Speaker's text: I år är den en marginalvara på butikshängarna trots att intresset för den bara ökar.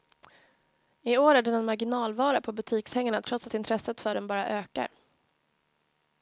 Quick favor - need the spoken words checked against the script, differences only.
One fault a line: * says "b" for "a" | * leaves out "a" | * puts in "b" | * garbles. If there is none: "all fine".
all fine